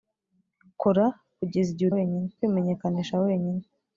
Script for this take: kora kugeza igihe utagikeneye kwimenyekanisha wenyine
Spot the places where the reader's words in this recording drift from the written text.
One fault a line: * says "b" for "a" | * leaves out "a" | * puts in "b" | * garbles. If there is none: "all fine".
* says "wenyine" for "utagikeneye"